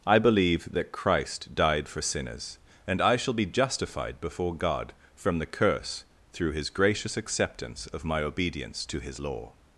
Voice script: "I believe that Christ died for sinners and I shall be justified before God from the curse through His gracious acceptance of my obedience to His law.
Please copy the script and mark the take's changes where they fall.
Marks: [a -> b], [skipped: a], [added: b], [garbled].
"I believe that Christ died for sinners and I shall be justified before God from the curse through His gracious acceptance of my obedience to His law.